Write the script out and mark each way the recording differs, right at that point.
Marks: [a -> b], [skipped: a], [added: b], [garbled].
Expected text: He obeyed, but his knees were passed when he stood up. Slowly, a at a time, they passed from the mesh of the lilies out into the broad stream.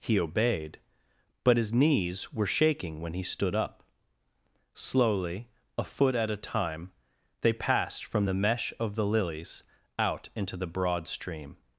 He obeyed, but his knees were [passed -> shaking] when he stood up. Slowly, a [added: foot] at a time, they passed from the mesh of the lilies out into the broad stream.